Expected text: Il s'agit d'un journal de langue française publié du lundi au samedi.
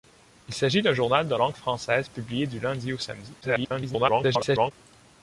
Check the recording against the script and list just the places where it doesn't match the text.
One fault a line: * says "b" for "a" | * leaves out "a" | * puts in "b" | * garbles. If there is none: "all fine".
* garbles